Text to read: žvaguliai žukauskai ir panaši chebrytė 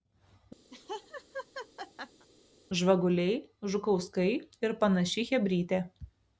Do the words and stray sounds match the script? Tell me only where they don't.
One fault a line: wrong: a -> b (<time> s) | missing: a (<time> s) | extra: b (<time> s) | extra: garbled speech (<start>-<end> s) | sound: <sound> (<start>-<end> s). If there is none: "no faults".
sound: laugh (0.7-2.3 s)